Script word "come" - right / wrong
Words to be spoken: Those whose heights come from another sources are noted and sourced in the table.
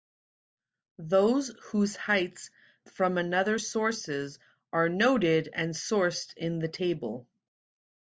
wrong